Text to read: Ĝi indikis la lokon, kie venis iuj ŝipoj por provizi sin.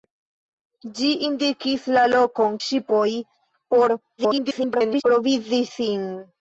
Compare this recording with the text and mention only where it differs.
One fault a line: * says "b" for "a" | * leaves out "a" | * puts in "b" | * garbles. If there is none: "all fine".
* leaves out "kie venis iuj"
* garbles